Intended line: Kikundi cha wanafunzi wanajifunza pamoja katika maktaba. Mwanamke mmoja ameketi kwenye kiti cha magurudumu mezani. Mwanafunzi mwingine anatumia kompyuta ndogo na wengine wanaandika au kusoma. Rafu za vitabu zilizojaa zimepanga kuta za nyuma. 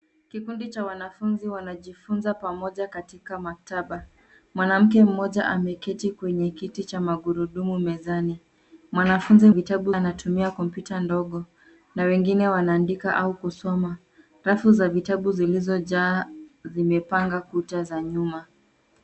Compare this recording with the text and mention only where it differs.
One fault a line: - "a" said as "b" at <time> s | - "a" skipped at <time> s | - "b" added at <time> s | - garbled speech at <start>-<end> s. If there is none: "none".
- "mwingine" said as "vitabu" at 9.5 s